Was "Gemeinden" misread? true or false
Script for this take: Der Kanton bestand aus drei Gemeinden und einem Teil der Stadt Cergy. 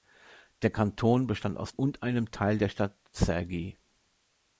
true